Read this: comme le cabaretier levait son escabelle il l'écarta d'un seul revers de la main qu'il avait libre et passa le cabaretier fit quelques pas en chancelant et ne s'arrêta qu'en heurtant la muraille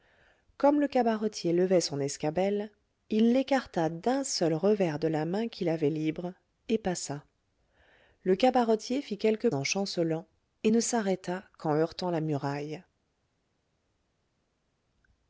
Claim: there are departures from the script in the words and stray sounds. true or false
true